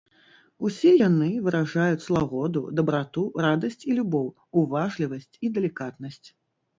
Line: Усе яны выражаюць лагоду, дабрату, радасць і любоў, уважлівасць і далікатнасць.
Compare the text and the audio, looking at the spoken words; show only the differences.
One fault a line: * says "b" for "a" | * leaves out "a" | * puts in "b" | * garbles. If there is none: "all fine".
all fine